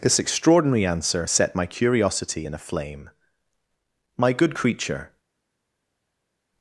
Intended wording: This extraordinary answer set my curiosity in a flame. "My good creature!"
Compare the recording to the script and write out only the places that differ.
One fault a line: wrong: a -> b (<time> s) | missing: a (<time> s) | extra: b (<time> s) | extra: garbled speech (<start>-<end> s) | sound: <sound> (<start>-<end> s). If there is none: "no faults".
no faults